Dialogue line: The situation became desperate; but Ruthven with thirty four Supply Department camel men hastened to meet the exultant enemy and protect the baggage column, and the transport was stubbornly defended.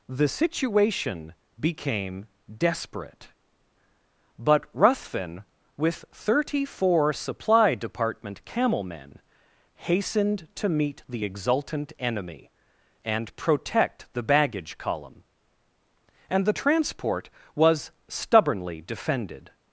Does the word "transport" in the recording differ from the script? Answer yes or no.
no